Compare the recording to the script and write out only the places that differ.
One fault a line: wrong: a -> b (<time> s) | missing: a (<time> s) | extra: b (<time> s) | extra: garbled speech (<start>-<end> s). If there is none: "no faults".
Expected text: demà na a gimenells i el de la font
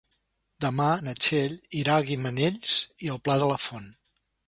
extra: txell irà (1.3 s)
extra: pla (3.3 s)